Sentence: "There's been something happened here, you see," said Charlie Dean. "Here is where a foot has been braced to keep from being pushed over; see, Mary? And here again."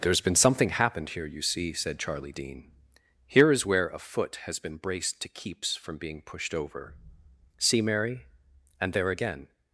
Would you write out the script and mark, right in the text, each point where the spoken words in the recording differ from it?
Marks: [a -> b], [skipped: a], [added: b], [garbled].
"There's been something happened here, you see," said Charlie Dean. "Here is where a foot has been braced to [keep -> keeps] from being pushed over; see, Mary? And [here -> there] again."